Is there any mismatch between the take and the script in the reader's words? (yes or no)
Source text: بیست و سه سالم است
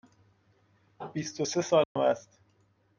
no